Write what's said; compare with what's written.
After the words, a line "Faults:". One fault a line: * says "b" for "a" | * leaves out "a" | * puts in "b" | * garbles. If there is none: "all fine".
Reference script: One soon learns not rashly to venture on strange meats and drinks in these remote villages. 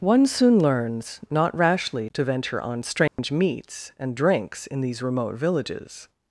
One soon learns not rashly to venture on strange meats and drinks in these remote villages.
Faults:
all fine